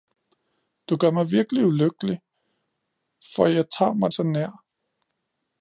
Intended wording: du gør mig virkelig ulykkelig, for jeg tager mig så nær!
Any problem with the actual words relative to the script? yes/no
no